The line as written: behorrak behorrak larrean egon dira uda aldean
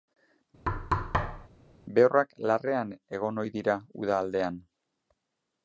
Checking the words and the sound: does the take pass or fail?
fail